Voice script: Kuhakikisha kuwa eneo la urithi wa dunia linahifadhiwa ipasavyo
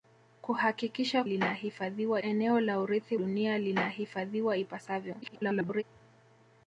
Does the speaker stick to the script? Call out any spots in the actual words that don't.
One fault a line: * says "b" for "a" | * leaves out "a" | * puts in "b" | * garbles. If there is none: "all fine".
* says "linahifadhiwa" for "kuwa"
* leaves out "wa"
* garbles